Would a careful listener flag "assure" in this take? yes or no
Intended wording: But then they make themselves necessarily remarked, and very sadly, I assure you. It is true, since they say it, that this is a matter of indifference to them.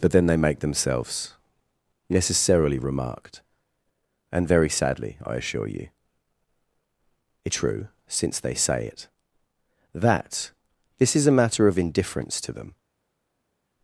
no